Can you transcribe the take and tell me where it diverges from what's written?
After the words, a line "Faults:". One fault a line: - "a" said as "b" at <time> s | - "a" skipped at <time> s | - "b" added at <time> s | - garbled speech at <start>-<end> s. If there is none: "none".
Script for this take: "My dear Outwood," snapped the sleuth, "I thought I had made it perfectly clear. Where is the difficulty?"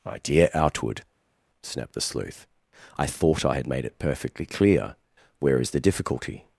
"My dear Outwood," snapped the sleuth, "I thought I had made it perfectly clear. Where is the difficulty?"
Faults:
none